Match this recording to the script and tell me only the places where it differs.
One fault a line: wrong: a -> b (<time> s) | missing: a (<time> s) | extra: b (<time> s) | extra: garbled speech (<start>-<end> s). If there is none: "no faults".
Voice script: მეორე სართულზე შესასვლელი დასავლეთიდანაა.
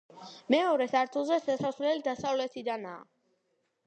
no faults